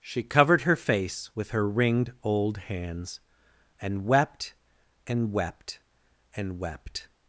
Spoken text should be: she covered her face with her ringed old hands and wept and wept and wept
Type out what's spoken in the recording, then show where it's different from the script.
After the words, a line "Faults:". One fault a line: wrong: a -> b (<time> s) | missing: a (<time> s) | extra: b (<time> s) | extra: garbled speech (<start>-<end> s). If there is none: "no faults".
she covered her face with her ringed old hands and wept and wept and wept
Faults:
no faults